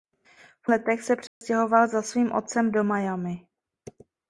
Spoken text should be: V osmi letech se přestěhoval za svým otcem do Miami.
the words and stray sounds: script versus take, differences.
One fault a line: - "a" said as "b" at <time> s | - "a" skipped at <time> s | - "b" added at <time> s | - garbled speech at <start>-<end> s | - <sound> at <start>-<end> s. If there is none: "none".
- "osmi" skipped at 0.7 s
- dropout at 1.3-1.4 s